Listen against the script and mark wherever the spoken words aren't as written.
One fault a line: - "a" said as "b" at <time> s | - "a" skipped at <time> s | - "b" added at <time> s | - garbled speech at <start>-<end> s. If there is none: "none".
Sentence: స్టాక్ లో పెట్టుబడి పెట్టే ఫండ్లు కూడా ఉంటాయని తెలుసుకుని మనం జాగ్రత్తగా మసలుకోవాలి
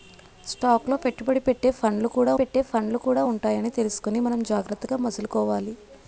- "పెట్టే ఫండ్లు కూడా" added at 2.3 s